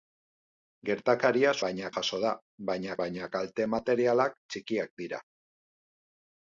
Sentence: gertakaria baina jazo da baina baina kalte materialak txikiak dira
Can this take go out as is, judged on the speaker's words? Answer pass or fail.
pass